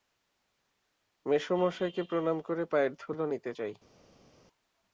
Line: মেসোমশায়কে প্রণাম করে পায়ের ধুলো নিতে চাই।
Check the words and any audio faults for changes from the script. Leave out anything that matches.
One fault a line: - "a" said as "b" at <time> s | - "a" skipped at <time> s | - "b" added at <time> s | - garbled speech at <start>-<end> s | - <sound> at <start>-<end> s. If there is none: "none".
none